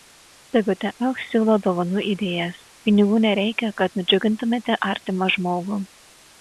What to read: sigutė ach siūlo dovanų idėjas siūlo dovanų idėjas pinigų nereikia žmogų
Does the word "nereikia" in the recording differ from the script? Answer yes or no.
yes